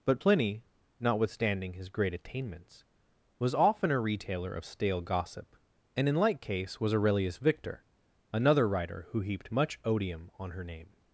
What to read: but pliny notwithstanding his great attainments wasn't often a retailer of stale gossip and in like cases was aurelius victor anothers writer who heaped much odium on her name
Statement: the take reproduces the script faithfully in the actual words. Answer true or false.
false